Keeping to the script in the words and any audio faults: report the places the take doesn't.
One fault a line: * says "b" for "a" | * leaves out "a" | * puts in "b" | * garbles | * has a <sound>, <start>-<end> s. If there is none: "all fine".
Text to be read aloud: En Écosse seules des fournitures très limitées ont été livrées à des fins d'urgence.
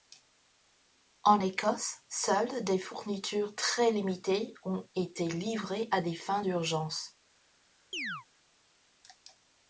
* has a chirp, 7.9-8.3 s